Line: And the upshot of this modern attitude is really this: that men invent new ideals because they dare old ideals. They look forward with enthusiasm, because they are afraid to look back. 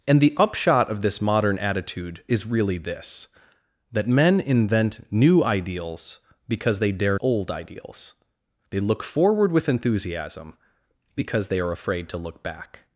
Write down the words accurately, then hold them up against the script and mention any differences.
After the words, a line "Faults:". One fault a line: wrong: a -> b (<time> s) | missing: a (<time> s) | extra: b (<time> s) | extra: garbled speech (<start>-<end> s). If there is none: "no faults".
And the upshot of this modern attitude is really this: that men invent new ideals because they dare old ideals. They look forward with enthusiasm, because they are afraid to look back.
Faults:
no faults